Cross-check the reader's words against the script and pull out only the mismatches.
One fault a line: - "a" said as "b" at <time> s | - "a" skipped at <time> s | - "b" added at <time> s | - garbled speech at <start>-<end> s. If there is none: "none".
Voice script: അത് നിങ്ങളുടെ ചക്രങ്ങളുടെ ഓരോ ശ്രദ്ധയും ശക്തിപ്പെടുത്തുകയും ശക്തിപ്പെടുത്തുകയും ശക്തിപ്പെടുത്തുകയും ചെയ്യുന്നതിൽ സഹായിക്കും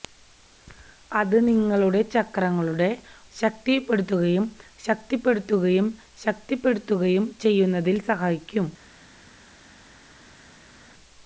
- "ഓരോ ശ്രദ്ധയും" skipped at 2.9 s